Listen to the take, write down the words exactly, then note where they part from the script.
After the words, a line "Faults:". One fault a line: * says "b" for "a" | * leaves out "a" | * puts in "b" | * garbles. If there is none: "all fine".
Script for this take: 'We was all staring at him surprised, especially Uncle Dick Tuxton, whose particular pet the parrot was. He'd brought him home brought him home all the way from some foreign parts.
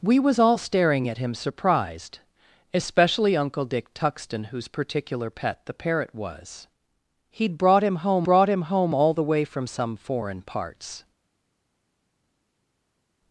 'We was all staring at him surprised, especially Uncle Dick Tuxton, whose particular pet the parrot was. He'd brought him home brought him home all the way from some foreign parts.
Faults:
all fine